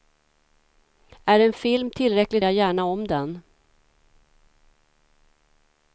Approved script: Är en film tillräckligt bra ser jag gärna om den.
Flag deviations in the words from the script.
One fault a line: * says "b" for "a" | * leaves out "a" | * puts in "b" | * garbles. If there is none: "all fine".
* leaves out "bra ser"